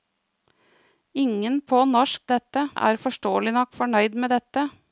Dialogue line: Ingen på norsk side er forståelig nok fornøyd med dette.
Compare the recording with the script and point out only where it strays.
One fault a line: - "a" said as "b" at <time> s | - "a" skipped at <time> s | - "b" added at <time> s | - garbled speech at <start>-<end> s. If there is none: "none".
- "side" said as "dette" at 2.3 s